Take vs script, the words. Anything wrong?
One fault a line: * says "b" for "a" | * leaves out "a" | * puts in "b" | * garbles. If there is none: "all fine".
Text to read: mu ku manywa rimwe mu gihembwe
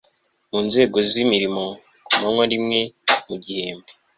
* puts in "nzego z'imirimo"